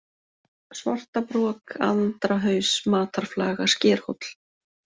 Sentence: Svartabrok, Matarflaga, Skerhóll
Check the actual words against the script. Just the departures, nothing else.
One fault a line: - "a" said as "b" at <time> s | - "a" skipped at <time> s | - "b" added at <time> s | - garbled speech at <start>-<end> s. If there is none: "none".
- "Andrahaus" added at 1.9 s